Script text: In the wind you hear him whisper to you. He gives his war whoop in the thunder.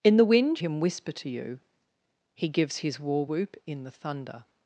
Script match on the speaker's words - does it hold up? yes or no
no